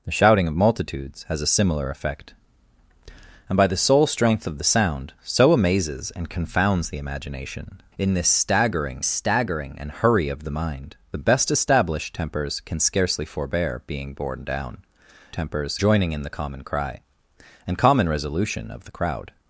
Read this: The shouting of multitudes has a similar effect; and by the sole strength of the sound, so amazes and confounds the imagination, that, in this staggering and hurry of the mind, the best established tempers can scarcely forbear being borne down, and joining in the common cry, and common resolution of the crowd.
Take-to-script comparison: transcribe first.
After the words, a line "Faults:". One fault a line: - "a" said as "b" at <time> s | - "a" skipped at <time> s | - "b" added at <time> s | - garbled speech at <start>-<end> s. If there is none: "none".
The shouting of multitudes has a similar effect; and by the sole strength of the sound, so amazes and confounds the imagination, in this staggering staggering and hurry of the mind, the best established tempers can scarcely forbear being borne down, tempers joining in the common cry, and common resolution of the crowd.
Faults:
- "that" skipped at 7.8 s
- "staggering" added at 9.0 s
- "and" said as "tempers" at 15.3 s